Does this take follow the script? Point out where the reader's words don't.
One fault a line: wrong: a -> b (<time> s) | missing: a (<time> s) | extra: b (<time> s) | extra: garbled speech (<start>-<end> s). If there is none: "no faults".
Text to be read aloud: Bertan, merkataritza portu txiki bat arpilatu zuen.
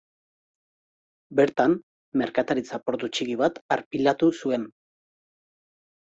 no faults